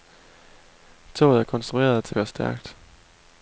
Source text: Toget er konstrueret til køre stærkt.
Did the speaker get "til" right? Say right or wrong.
right